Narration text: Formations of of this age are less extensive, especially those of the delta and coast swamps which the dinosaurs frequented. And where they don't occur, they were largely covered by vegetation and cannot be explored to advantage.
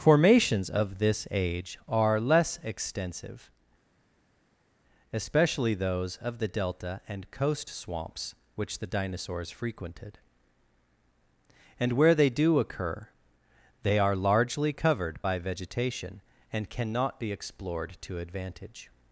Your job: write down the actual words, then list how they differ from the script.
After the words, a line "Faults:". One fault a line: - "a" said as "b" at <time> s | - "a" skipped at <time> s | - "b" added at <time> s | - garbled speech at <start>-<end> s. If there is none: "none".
Formations of this age are less extensive, especially those of the delta and coast swamps which the dinosaurs frequented. And where they do occur, they are largely covered by vegetation and cannot be explored to advantage.
Faults:
- "of" skipped at 1.0 s
- "don't" said as "do" at 12.3 s
- "were" said as "are" at 14.0 s